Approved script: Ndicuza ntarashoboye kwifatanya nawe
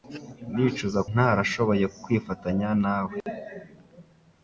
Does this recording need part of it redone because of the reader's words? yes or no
no